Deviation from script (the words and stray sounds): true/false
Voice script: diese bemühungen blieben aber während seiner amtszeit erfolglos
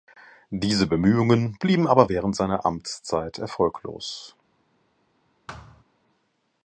true